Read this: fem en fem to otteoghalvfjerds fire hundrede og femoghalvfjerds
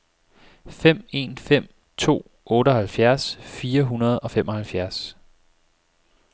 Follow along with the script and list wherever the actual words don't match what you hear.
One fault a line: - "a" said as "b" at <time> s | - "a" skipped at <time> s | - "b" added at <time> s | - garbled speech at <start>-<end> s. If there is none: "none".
none